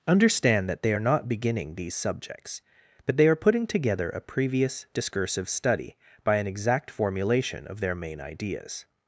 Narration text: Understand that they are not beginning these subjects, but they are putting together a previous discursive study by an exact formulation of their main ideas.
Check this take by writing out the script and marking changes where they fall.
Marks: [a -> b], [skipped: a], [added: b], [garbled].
Understand that they are not beginning these subjects, but they are putting together a previous discursive study by an exact formulation of their main ideas.